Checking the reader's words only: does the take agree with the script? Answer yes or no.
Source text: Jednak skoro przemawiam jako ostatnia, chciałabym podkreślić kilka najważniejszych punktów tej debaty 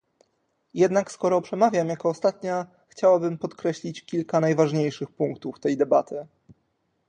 yes